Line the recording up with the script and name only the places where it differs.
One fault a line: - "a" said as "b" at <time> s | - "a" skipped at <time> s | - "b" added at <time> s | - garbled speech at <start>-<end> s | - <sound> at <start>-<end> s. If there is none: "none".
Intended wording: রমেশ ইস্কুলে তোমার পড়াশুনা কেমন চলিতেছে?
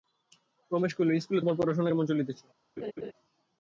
- "কহিল" added at 0.9 s
- laugh at 2.8-3.1 s